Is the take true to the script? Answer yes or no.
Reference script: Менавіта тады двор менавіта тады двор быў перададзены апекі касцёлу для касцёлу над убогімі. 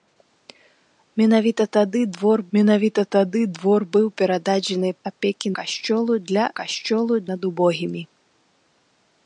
yes